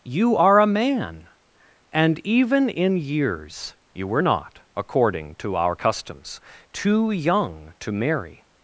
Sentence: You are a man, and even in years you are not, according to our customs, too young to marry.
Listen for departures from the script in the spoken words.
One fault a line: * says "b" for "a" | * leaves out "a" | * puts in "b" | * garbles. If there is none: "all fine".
* says "were" for "are"